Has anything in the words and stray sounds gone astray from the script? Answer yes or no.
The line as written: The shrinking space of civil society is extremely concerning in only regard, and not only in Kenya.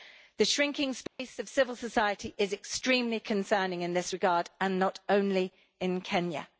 yes